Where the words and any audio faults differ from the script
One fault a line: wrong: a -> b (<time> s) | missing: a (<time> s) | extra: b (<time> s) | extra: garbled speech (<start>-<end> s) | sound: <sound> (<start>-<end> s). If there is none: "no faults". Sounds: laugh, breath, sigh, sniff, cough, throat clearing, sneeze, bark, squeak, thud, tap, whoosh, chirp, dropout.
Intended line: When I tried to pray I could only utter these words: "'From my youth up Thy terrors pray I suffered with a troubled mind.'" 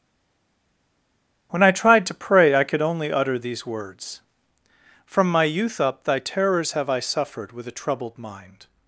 wrong: pray -> have (6.7 s)